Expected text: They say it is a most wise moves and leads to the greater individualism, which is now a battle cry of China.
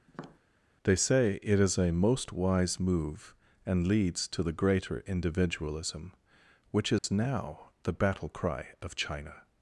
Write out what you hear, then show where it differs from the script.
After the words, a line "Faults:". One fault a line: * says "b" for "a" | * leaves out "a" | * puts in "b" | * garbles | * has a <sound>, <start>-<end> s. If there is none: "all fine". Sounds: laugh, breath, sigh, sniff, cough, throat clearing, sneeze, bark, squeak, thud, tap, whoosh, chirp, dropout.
They say it is a most wise move and leads to the greater individualism, which is now the battle cry of China.
Faults:
* has a tap, 0.1-0.4 s
* says "move" for "moves"
* has a dropout, 7.0-7.0 s
* says "the" for "a"